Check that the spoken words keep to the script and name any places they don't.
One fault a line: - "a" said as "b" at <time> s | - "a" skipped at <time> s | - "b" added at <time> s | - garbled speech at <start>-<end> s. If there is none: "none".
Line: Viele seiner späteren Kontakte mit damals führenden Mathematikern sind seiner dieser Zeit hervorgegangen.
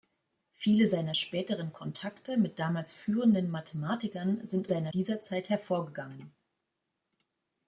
none